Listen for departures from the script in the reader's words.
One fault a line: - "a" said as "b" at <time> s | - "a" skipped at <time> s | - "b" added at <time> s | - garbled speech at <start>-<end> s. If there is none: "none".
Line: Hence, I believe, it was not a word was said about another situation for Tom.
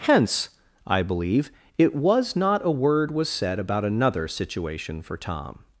none